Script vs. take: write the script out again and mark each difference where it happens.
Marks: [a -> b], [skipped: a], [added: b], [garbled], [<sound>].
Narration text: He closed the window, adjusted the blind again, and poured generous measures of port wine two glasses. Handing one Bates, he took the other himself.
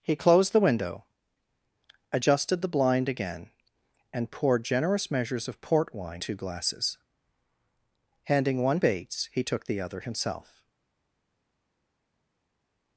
He closed the window, adjusted the blind again, and poured generous measures of port wine two glasses. Handing one Bates, he took the other himself.